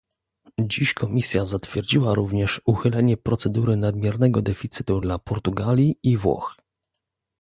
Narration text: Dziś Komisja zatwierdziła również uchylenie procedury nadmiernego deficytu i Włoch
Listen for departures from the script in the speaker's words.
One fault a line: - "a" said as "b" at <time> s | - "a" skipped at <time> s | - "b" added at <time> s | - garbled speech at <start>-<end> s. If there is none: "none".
- "dla Portugalii" added at 5.0 s